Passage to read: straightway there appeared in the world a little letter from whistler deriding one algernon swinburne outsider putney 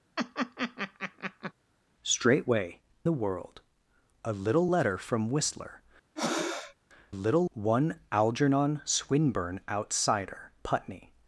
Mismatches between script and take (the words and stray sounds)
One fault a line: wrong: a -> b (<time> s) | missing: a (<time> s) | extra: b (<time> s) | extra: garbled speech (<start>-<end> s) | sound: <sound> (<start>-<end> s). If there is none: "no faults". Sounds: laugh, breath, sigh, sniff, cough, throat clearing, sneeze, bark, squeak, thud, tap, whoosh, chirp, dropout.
sound: laugh (0.2-1.5 s)
missing: there appeared in (2.8 s)
sound: breath (6.2-6.8 s)
wrong: deriding -> little (7.1 s)